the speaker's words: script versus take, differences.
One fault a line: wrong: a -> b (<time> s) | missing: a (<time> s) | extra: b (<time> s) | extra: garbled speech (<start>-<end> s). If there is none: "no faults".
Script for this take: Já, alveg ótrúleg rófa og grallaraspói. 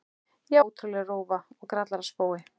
missing: alveg (0.6 s)